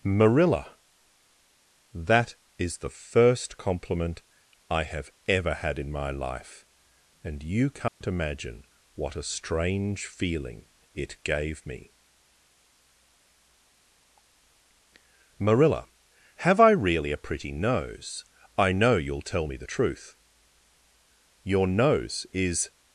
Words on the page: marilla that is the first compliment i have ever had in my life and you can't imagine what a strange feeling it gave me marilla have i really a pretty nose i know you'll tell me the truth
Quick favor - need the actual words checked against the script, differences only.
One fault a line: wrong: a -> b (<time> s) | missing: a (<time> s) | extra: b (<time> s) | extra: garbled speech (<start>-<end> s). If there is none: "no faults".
extra: your nose is (21.4 s)